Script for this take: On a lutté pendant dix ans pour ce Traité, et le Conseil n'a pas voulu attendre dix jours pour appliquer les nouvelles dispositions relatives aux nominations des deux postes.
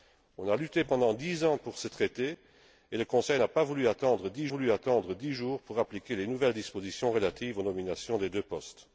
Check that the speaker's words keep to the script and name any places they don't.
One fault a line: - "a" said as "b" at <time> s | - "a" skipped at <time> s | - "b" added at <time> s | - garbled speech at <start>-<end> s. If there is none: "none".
- "voulu attendre dix" added at 4.5 s